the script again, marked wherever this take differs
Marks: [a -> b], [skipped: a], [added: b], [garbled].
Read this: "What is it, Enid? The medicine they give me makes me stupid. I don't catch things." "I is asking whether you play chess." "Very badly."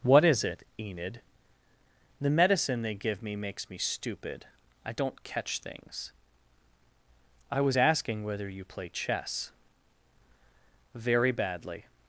"What is it, Enid? The medicine they give me makes me stupid. I don't catch things." "I [is -> was] asking whether you play chess." "Very badly."